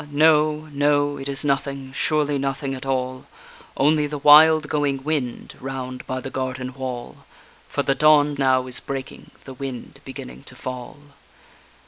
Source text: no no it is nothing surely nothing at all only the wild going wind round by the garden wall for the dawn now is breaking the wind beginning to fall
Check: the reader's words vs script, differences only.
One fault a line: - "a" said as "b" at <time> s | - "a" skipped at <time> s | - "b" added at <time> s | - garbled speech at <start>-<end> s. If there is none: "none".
none